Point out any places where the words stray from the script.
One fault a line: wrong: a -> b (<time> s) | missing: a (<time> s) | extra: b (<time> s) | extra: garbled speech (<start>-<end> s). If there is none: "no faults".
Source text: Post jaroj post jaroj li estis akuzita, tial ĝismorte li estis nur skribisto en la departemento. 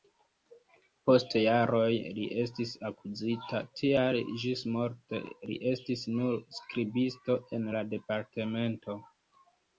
missing: post jaroj (1.9 s)